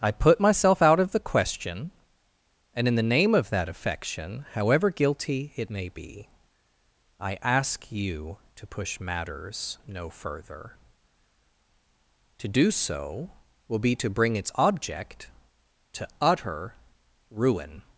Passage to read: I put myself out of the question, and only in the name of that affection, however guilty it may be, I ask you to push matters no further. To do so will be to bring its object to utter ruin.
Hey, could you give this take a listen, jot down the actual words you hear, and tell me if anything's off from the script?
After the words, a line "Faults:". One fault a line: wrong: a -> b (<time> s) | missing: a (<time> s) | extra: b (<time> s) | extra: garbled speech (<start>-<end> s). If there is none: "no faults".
I put myself out of the question, and in the name of that affection, however guilty it may be, I ask you to push matters no further. To do so will be to bring its object to utter ruin.
Faults:
missing: only (2.9 s)